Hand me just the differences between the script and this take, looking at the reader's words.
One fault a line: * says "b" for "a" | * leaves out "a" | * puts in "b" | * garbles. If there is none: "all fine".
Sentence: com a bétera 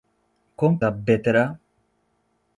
all fine